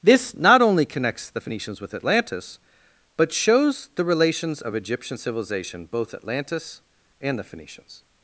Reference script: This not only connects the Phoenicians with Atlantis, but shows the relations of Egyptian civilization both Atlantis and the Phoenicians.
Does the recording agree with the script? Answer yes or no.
yes